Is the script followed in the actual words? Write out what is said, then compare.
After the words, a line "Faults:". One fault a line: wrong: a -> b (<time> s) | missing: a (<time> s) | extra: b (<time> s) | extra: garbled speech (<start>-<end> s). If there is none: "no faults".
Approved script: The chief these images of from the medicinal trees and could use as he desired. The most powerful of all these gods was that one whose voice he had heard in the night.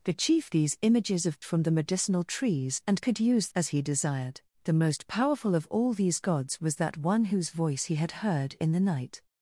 The chief these images of from the medicinal trees and could use as he desired. The most powerful of all these gods was that one whose voice he had heard in the night.
Faults:
no faults